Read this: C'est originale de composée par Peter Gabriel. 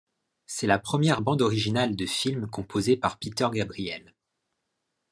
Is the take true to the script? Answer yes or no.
no